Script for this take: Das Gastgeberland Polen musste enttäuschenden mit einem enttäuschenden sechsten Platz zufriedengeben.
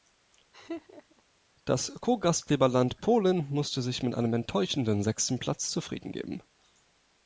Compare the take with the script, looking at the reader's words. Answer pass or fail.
fail